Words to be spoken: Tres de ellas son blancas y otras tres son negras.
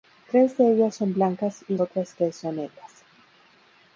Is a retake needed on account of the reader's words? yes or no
no